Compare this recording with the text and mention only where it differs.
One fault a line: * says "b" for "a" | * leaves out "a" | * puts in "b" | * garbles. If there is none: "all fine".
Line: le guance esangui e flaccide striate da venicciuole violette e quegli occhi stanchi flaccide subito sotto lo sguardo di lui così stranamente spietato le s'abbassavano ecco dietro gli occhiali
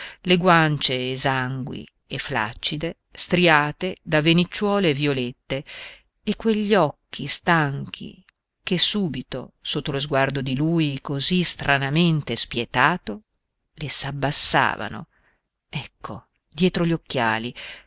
* says "che" for "flaccide"